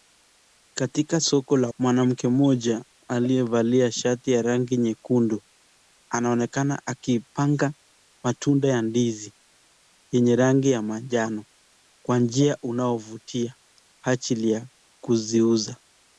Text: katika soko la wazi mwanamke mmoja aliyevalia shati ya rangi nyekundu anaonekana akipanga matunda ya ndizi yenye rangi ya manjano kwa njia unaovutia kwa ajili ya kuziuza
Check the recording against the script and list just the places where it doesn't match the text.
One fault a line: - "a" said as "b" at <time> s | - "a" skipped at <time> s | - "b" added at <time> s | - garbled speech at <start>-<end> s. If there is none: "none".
- "wazi" skipped at 1.7 s
- "kwa" skipped at 13.5 s